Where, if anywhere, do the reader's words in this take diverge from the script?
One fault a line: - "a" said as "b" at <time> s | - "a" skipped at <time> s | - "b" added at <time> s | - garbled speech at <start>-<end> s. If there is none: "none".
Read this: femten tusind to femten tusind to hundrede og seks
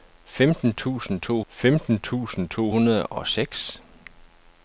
none